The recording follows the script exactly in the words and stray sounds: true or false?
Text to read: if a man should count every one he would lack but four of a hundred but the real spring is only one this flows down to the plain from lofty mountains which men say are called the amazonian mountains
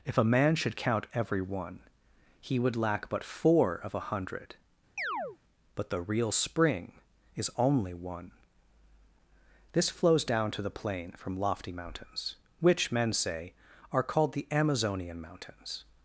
false